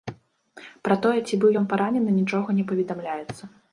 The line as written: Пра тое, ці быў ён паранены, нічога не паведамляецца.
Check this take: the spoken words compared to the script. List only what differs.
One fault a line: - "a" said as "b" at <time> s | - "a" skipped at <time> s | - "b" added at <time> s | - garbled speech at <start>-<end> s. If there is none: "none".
none